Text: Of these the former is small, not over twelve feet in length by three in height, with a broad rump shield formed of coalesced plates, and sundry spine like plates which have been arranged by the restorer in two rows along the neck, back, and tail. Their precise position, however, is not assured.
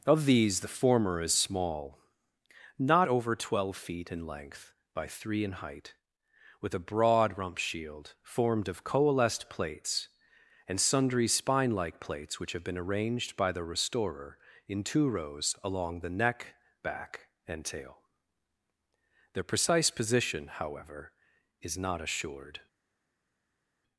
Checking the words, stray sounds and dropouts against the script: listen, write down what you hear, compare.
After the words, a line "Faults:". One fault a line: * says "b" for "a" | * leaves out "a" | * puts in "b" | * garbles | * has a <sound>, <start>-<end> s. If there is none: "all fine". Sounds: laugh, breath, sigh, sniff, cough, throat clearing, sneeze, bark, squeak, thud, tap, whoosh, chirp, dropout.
Of these the former is small, not over twelve feet in length by three in height, with a broad rump shield formed of coalesced plates, and sundry spine like plates which have been arranged by the restorer in two rows along the neck, back, and tail. Their precise position, however, is not assured.
Faults:
all fine